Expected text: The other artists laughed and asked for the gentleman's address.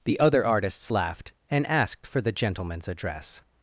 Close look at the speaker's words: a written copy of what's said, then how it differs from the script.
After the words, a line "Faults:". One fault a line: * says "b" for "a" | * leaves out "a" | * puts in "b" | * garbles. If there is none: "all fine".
The other artists laughed and asked for the gentleman's address.
Faults:
all fine